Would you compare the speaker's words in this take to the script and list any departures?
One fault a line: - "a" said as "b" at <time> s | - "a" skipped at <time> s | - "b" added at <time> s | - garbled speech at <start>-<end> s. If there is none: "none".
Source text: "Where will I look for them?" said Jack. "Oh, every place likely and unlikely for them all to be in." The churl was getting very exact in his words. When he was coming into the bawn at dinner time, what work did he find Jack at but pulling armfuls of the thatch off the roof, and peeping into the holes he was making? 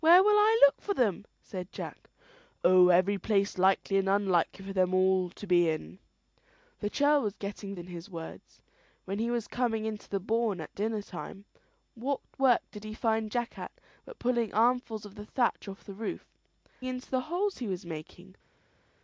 - "very exact" skipped at 7.8 s
- "and peeping" skipped at 16.3 s